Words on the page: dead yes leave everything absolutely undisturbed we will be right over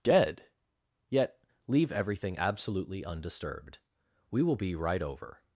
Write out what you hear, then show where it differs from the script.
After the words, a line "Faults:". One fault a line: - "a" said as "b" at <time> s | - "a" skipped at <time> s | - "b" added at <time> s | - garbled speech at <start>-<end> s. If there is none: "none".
dead yet leave everything absolutely undisturbed we will be right over
Faults:
- "yes" said as "yet" at 1.1 s